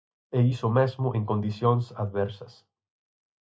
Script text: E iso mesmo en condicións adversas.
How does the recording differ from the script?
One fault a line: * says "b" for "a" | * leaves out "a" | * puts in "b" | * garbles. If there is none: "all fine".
all fine